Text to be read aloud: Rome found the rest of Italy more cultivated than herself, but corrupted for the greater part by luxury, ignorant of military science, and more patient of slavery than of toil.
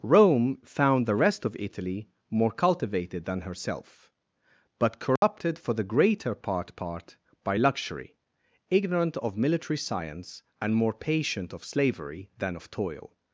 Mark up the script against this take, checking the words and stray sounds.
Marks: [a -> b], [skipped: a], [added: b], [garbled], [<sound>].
Rome found the rest of Italy more cultivated than herself, but corrupted [dropout] for the greater part [added: part] by luxury, ignorant of military science, and more patient of slavery than of toil.